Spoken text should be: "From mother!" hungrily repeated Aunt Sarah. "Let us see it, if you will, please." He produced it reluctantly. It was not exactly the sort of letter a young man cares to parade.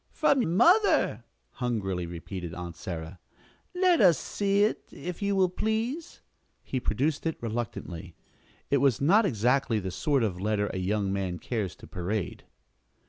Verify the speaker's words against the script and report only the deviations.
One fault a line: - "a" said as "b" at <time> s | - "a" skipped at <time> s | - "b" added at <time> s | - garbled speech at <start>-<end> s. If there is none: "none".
none